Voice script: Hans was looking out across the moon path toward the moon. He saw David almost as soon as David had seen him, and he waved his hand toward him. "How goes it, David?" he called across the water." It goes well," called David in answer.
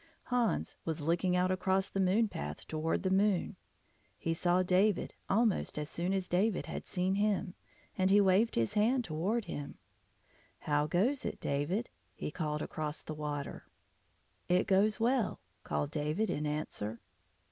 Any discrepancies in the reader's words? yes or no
no